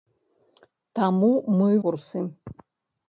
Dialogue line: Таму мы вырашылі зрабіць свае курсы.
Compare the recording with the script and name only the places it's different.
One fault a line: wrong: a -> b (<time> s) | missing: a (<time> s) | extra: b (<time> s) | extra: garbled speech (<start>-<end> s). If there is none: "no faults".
missing: вырашылі зрабіць свае (1.7 s)